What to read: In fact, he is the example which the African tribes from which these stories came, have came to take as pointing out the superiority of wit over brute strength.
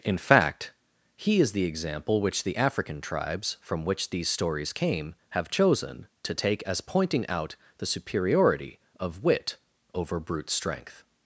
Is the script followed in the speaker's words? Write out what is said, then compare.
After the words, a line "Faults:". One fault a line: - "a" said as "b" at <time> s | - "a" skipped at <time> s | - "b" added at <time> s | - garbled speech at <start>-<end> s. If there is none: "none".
In fact, he is the example which the African tribes from which these stories came, have chosen to take as pointing out the superiority of wit over brute strength.
Faults:
- "came" said as "chosen" at 5.5 s